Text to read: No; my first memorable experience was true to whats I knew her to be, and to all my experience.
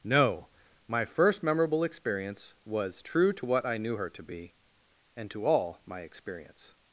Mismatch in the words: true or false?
true